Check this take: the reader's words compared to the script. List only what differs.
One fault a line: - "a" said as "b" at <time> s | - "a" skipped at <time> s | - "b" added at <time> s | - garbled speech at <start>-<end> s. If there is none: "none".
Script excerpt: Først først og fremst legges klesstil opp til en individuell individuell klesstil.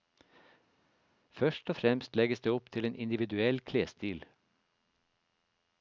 - "først" skipped at 1.7 s
- "klesstil" said as "det" at 2.4 s
- "individuell" skipped at 3.6 s